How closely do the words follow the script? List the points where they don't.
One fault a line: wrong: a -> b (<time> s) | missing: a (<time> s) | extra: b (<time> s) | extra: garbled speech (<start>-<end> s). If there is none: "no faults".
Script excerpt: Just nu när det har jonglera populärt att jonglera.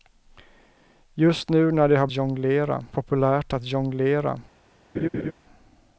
no faults